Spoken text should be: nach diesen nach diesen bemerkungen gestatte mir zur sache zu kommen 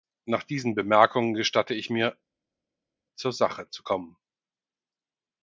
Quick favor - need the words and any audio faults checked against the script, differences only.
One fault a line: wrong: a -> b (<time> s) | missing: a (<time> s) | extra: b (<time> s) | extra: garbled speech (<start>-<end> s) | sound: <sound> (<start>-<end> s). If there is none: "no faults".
missing: nach diesen (0.7 s)
extra: ich (1.8 s)